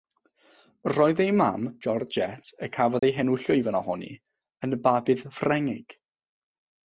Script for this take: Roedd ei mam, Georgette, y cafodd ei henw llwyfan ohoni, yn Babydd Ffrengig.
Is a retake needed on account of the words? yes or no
no